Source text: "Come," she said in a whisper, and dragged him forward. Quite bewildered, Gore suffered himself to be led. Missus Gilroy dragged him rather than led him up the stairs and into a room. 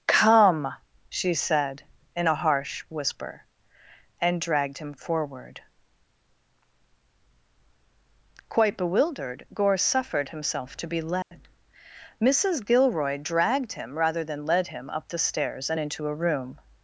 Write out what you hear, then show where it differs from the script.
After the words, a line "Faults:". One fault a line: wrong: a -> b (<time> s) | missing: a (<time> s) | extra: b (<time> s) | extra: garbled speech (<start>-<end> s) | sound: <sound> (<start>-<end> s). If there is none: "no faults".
"Come," she said in a harsh whisper, and dragged him forward. Quite bewildered, Gore suffered himself to be led. Missus Gilroy dragged him rather than led him up the stairs and into a room.
Faults:
extra: harsh (2.4 s)
sound: dropout (11.2-11.3 s)